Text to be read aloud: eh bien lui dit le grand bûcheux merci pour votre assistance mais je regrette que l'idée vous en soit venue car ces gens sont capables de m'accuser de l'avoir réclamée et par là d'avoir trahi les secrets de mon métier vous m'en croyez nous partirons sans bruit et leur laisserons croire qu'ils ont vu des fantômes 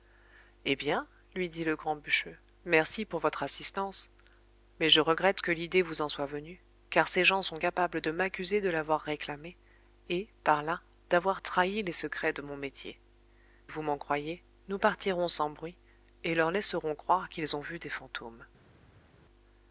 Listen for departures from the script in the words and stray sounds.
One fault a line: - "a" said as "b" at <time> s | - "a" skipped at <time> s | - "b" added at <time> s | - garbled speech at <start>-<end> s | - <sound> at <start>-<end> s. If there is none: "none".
none